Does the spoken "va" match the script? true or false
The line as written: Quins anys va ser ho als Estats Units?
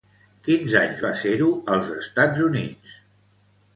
true